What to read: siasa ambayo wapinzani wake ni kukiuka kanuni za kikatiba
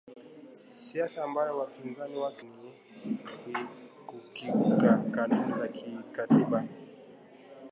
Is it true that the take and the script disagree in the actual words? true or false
false